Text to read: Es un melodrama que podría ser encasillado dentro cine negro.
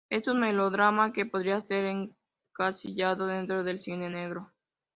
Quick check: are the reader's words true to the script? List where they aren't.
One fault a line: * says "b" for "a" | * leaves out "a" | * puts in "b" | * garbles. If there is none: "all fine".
* puts in "del"